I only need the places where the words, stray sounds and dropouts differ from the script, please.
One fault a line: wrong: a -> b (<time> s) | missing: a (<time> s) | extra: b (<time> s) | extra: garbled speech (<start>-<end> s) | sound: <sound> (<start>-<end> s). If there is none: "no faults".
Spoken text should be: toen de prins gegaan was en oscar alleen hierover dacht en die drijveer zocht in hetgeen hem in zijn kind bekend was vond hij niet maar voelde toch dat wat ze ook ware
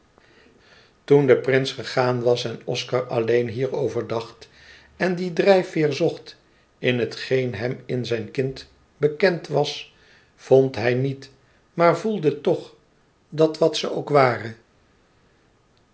no faults